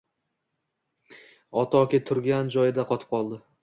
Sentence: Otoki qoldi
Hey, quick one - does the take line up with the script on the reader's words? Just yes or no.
no